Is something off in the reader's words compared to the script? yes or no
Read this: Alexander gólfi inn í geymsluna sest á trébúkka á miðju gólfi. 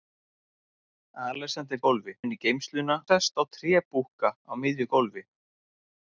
no